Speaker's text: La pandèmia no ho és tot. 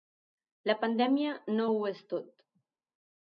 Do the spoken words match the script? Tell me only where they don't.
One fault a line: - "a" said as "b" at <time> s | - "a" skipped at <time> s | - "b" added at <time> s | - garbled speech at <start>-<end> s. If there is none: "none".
none